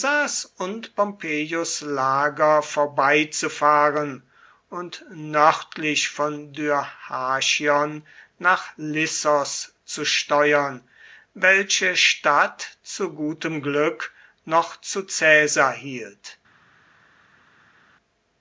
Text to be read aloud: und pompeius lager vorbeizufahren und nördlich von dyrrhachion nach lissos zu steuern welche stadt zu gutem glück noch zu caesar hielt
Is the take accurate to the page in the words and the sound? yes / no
yes